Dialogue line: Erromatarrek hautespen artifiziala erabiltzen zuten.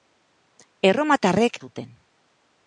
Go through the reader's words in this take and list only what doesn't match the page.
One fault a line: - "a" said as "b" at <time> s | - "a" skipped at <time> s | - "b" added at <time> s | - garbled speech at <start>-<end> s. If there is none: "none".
- "hautespen artifiziala erabiltzen" skipped at 1.6 s